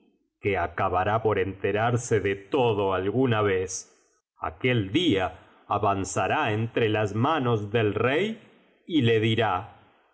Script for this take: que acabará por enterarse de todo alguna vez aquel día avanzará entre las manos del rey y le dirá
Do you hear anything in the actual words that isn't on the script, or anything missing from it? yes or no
no